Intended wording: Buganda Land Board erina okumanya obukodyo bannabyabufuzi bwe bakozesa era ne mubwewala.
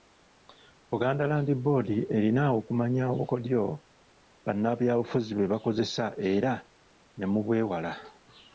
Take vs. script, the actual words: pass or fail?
pass